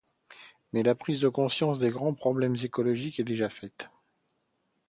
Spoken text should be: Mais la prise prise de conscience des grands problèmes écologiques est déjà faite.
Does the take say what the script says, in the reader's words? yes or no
no